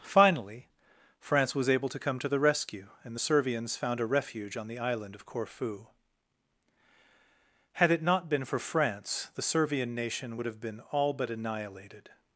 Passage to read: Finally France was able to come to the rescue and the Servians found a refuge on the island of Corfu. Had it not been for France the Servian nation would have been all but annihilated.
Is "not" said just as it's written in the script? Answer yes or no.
yes